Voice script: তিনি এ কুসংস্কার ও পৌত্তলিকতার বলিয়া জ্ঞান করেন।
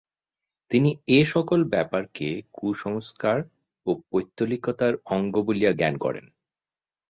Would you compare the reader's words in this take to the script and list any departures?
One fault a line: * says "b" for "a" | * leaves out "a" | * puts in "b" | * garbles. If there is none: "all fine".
* puts in "সকল ব্যাপারকে"
* puts in "অঙ্গ"